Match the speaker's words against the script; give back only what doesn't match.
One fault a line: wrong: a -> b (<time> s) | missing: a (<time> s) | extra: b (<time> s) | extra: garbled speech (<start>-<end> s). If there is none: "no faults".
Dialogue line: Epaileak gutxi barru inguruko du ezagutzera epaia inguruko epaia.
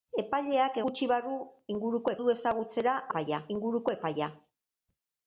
no faults